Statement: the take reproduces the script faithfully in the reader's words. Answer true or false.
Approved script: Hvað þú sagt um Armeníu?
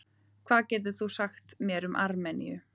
false